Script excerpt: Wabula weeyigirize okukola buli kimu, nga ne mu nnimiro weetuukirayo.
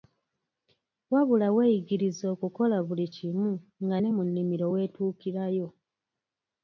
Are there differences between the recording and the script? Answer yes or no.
no